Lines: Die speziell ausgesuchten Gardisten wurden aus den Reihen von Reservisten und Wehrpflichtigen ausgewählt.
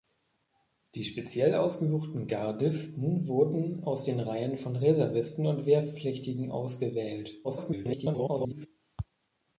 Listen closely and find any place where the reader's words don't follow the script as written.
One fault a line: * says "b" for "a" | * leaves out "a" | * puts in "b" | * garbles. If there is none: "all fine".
* garbles